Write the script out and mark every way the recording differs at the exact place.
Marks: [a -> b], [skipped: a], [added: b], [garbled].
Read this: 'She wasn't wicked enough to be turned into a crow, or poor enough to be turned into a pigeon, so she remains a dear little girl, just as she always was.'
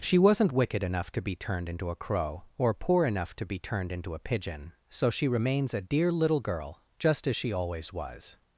'She wasn't wicked enough to be turned into a crow, or poor enough to be turned into a pigeon, so she remains a dear little girl, just as she always was.'